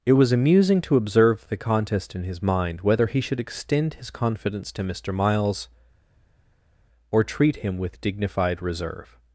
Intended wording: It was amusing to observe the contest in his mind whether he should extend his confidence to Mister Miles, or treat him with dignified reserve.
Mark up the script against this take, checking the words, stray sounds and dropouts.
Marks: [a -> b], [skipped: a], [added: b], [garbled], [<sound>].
It was amusing to observe the contest in his mind whether he should extend his confidence to Mister Miles, or treat him with dignified reserve.